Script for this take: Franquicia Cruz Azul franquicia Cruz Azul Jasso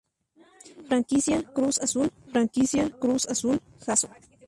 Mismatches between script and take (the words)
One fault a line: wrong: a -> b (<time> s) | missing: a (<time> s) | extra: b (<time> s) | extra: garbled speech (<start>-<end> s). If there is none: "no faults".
no faults